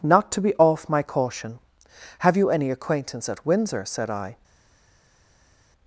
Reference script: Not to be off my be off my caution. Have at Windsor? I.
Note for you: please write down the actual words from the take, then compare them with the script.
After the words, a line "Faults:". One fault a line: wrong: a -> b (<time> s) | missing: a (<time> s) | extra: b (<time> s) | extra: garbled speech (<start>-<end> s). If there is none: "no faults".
Not to be off my caution. Have you any acquaintance at Windsor? said I.
Faults:
wrong: be off my caution Have -> caution Have you any acquaintance (1.0 s)
extra: said (3.9 s)